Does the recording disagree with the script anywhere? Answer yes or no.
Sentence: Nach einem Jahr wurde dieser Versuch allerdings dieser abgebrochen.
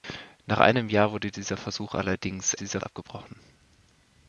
no